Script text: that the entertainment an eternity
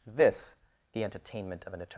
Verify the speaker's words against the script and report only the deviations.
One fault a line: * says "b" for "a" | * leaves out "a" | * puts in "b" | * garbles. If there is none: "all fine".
* says "this" for "that"
* puts in "of"